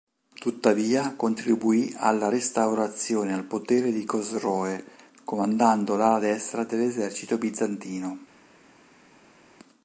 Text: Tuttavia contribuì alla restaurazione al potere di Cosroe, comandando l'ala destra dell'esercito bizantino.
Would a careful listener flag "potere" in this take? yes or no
no